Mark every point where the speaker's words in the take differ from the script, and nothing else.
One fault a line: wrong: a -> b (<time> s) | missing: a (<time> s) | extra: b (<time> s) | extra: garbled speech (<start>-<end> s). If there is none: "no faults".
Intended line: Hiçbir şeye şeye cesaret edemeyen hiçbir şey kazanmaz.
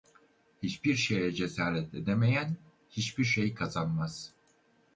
missing: şeye (1.3 s)